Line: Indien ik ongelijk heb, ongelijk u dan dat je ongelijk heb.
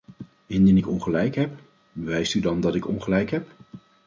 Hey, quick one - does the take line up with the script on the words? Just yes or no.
no